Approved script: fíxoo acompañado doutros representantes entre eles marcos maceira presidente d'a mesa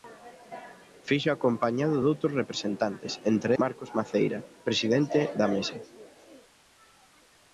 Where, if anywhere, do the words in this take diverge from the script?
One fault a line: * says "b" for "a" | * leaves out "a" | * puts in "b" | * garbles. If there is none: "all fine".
* leaves out "eles"